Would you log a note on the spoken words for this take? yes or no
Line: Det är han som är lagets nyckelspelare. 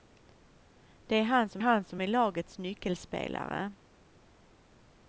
yes